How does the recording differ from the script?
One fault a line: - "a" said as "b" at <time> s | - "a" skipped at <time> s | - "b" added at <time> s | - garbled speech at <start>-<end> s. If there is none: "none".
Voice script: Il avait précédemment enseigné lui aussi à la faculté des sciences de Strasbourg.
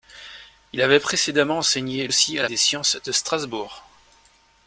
- "lui" skipped at 2.1 s
- "faculté" skipped at 2.5 s